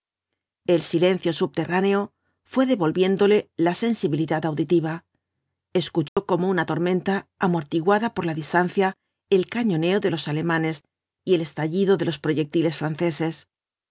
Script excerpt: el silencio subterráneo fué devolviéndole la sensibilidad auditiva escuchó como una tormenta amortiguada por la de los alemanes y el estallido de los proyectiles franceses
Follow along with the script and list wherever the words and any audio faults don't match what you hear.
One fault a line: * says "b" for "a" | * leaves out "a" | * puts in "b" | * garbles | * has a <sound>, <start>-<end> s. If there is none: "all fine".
* has a dropout, 6.1-6.2 s
* puts in "distancia el cañoneo"